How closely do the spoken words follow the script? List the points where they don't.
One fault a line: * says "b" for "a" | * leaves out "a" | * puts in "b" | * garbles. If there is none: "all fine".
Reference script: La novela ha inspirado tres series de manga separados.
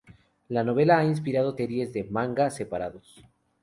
* leaves out "tres"